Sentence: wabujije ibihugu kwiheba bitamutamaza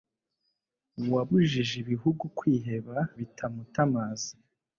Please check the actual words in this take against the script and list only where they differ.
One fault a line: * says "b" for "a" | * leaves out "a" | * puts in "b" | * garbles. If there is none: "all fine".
all fine